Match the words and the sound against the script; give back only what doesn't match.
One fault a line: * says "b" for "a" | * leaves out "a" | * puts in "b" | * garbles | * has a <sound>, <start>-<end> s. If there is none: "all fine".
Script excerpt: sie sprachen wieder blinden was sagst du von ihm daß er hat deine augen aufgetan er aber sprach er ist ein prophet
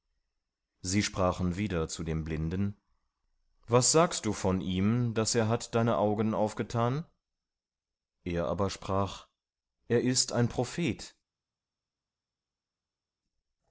* puts in "zu dem"